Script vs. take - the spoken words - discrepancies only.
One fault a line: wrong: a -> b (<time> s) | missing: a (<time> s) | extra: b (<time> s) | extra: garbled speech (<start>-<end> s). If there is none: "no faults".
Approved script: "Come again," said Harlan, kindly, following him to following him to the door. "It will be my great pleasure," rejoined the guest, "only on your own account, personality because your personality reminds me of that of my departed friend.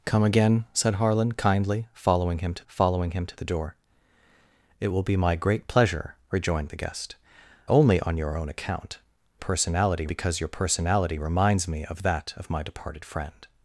no faults